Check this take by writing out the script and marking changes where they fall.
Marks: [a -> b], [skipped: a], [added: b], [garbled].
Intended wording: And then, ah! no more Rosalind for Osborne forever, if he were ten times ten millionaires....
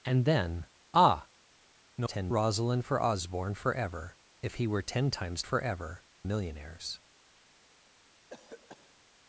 And then, ah! no [more -> ten] Rosalind for Osborne forever, if he were ten times [ten -> forever] millionaires....